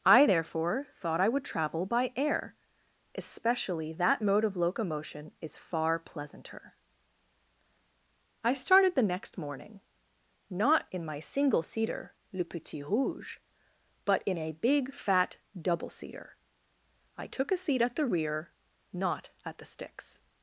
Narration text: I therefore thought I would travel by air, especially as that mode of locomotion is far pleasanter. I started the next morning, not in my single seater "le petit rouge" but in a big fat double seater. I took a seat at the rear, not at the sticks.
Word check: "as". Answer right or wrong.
wrong